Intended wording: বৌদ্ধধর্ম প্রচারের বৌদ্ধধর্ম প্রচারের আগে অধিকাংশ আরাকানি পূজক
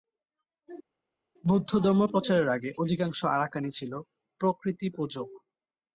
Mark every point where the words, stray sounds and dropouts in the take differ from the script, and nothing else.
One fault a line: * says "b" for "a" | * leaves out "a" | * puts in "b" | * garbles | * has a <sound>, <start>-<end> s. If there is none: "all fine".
* leaves out "বৌদ্ধধর্ম প্রচারের"
* puts in "ছিল প্রকৃতি"